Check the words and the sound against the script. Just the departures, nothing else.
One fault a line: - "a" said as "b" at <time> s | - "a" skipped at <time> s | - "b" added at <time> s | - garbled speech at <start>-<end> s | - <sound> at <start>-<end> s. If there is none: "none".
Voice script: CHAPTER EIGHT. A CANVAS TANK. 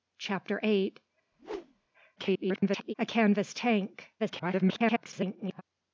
- whoosh at 1.3-1.9 s
- garbled speech at 2.2-2.9 s
- garbled speech at 4.2-5.6 s